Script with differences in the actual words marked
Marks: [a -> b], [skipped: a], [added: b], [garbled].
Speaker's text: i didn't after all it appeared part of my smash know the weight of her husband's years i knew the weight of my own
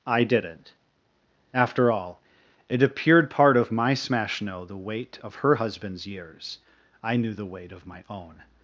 i didn't after all it appeared part of my smash know the weight of her husband's years i knew the weight of my own